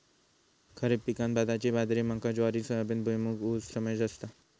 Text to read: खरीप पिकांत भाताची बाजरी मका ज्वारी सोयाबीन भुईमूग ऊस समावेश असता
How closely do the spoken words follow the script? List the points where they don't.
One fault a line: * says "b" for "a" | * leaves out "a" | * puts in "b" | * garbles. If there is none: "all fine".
all fine